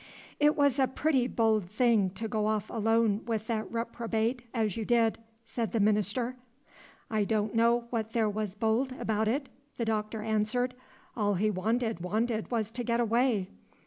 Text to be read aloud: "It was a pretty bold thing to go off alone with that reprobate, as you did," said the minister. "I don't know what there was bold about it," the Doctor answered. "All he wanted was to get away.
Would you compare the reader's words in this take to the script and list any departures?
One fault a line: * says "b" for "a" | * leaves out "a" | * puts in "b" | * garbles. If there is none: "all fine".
* puts in "wanted"